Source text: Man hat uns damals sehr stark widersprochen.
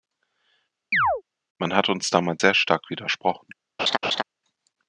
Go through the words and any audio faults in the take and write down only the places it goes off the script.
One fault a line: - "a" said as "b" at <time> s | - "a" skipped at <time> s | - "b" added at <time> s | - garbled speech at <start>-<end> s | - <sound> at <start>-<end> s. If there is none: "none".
- chirp at 0.9-1.2 s
- laugh at 3.8-4.2 s